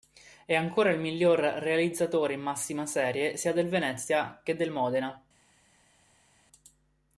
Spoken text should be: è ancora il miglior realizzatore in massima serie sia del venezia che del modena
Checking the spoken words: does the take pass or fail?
pass